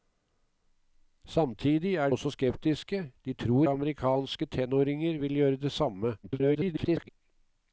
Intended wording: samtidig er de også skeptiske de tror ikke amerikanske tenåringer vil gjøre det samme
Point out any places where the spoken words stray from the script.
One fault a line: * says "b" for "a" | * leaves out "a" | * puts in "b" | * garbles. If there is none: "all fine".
* leaves out "de"
* leaves out "ikke"
* garbles